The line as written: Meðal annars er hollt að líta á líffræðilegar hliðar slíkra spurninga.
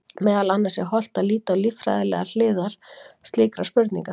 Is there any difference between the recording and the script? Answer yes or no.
no